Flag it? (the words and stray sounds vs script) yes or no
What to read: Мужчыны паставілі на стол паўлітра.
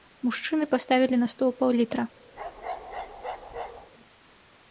yes